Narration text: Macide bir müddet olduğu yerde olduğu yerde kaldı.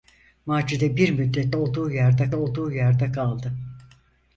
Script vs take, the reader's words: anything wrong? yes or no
no